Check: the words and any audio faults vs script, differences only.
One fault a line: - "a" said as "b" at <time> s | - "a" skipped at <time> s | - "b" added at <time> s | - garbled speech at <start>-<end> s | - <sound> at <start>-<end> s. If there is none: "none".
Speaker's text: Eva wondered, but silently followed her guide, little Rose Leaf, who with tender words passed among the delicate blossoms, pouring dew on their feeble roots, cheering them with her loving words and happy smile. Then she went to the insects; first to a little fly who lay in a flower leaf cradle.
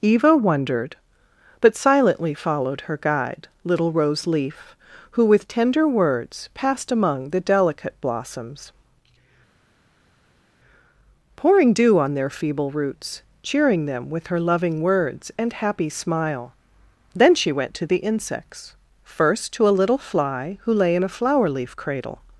none